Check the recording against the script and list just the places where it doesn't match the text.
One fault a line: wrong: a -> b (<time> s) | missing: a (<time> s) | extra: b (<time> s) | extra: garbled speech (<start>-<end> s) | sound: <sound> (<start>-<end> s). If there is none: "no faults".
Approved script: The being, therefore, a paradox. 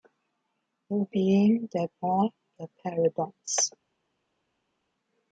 no faults